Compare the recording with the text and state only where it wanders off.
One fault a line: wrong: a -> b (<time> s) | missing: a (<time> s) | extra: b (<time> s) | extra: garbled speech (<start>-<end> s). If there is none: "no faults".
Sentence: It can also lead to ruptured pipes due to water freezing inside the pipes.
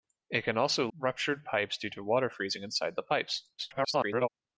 missing: lead to (0.9 s)
extra: garbled speech (3.6-4.3 s)